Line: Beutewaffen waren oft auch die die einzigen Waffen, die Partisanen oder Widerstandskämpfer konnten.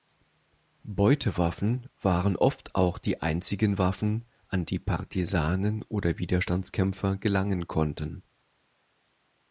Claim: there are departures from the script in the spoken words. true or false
true